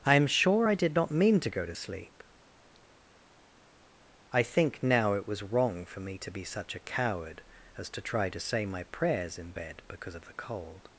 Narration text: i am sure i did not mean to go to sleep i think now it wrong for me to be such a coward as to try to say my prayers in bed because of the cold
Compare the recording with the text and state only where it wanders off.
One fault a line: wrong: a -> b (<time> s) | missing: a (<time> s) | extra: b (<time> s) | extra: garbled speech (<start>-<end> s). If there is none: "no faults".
extra: was (5.3 s)